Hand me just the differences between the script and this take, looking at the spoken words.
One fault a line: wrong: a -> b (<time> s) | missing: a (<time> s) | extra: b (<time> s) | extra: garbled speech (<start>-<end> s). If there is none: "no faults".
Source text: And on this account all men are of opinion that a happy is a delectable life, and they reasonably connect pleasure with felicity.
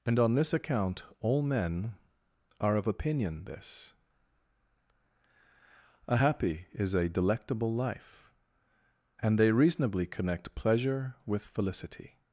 wrong: that -> this (3.5 s)